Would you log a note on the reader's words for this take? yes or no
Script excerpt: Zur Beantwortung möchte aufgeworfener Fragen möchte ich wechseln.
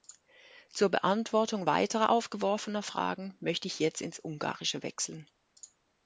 yes